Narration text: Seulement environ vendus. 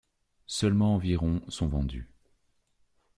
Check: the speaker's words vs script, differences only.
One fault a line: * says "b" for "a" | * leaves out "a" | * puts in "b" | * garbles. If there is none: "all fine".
* puts in "sont"